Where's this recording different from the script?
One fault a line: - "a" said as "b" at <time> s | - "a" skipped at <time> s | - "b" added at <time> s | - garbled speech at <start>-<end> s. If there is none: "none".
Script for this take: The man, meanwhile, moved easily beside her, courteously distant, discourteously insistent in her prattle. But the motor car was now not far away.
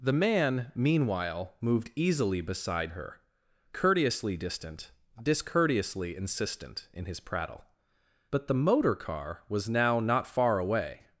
- "her" said as "his" at 7.0 s